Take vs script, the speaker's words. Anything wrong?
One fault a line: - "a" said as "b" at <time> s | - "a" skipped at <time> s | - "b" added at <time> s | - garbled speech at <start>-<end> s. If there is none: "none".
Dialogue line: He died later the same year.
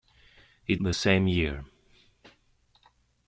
- "died later" skipped at 0.8 s